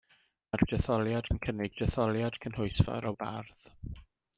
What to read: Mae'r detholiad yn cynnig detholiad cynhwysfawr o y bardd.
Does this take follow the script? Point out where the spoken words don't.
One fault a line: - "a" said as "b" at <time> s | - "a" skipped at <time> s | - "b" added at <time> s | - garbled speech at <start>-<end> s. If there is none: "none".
none